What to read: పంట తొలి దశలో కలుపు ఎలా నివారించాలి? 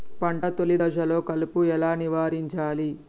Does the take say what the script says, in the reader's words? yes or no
yes